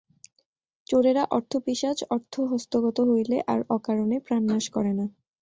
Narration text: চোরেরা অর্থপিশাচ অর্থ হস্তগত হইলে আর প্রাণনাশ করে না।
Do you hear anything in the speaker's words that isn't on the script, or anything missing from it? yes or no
yes